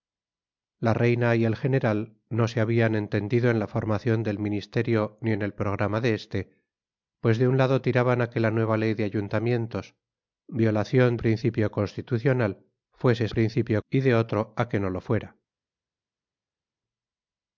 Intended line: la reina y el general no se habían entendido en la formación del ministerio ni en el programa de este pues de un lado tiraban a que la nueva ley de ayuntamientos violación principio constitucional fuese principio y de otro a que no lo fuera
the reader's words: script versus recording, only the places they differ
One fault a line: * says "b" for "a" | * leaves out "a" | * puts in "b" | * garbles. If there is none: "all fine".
all fine